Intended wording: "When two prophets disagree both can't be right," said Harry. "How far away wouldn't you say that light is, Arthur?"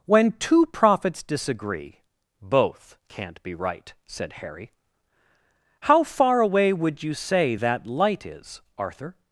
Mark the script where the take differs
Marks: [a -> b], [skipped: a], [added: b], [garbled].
"When two prophets disagree both can't be right," said Harry. "How far away [wouldn't -> would] you say that light is, Arthur?"